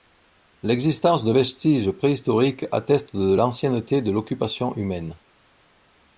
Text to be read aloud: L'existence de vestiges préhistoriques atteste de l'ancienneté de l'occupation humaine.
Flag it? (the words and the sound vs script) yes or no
no